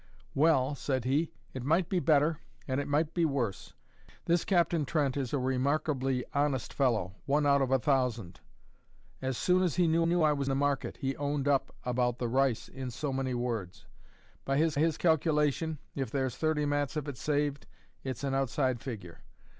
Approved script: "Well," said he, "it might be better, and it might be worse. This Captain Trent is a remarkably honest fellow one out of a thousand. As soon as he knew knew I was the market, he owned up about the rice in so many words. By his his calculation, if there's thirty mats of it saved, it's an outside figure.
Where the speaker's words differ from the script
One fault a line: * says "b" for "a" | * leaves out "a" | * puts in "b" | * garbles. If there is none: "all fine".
all fine